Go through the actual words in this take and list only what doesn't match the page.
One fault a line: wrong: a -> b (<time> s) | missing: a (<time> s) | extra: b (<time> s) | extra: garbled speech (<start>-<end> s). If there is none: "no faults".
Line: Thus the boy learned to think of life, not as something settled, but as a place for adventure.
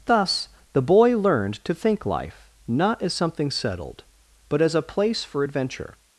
missing: of (2.0 s)